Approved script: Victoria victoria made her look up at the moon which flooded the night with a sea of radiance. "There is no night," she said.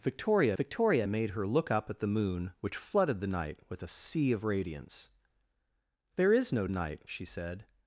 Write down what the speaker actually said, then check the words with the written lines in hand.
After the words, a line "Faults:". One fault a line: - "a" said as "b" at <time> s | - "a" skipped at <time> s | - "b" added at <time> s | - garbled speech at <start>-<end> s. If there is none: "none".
Victoria victoria made her look up at the moon which flooded the night with a sea of radiance. "There is no night," she said.
Faults:
none